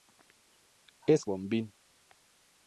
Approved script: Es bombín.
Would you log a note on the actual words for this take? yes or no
no